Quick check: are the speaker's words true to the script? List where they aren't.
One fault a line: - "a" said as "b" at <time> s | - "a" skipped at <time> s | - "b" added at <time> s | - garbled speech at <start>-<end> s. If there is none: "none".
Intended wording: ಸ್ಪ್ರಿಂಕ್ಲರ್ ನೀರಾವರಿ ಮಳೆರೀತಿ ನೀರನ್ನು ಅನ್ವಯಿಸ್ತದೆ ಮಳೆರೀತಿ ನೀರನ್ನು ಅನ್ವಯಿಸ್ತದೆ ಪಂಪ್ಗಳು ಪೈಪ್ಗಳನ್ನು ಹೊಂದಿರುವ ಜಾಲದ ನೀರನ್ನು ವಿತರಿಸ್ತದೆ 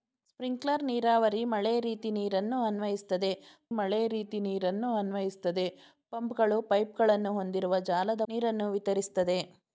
none